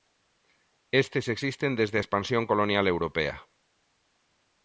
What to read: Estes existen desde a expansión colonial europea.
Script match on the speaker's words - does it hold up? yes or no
yes